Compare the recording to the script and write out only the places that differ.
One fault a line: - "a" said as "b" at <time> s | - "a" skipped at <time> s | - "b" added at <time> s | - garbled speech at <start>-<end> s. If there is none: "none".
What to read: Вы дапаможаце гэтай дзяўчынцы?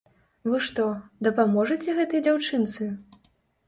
- "што" added at 0.7 s